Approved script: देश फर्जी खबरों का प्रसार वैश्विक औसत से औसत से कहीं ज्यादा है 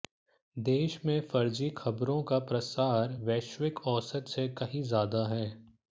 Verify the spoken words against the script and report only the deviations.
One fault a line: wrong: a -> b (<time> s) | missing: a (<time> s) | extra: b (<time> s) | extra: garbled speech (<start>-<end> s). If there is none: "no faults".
extra: में (1.1 s)
missing: औसत से (4.5 s)